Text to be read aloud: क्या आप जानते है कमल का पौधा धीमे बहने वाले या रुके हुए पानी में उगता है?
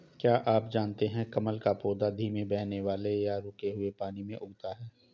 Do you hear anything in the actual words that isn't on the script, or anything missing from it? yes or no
no